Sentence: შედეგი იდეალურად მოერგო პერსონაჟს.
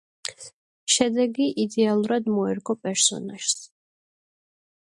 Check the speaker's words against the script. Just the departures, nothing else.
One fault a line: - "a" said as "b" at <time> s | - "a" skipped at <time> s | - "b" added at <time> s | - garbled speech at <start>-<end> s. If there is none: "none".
none